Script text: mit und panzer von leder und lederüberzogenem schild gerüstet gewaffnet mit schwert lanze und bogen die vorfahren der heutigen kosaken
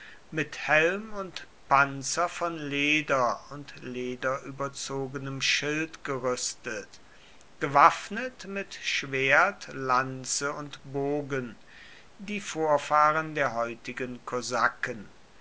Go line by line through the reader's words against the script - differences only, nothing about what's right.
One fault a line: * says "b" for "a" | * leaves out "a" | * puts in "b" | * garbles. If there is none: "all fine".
* puts in "helm"